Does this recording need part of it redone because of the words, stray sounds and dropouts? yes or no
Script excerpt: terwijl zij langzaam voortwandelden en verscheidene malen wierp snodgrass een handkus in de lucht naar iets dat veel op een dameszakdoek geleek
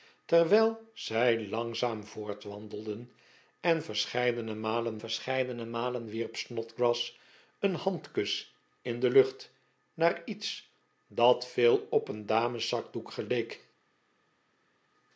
yes